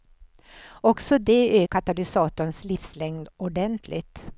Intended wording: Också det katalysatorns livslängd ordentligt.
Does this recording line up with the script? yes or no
yes